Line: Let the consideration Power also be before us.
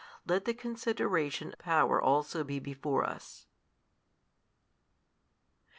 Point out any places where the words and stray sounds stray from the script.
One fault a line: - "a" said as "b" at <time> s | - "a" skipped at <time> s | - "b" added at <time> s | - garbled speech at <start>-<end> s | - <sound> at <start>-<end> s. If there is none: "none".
none